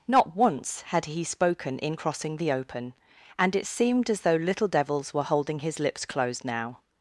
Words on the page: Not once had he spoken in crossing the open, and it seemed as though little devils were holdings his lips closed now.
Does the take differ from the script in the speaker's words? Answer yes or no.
yes